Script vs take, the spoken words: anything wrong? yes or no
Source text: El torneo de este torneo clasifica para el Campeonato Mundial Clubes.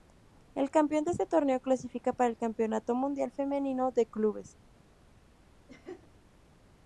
yes